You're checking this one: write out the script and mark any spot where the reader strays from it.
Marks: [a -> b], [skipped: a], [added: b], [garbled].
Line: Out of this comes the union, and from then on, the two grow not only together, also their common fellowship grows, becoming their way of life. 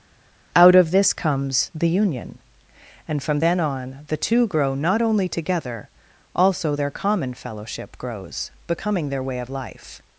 Out of this comes the union, and from then on, the two grow not only together, also their common fellowship grows, becoming their way of life.